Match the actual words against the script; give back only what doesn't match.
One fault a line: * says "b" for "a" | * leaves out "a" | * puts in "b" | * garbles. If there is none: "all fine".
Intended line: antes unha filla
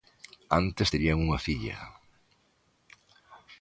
* puts in "terían"